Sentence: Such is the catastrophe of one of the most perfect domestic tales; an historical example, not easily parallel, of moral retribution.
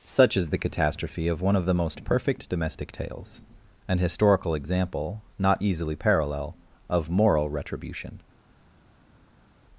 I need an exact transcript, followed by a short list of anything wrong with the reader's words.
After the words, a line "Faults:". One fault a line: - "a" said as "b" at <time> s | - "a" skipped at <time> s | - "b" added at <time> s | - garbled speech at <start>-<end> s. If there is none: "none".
Such is the catastrophe of one of the most perfect domestic tales; an historical example, not easily parallel, of moral retribution.
Faults:
none